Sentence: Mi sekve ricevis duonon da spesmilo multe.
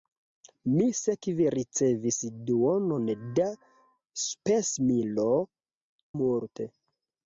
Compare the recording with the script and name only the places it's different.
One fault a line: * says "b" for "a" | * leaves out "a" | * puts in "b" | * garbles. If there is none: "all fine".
all fine